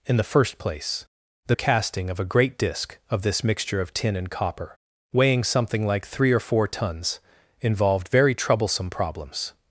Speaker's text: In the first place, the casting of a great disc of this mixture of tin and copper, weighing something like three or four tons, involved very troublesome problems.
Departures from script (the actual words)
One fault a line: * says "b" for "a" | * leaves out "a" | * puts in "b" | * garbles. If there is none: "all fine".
all fine